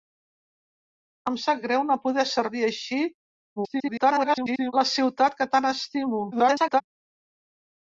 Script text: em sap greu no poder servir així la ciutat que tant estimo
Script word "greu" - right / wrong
right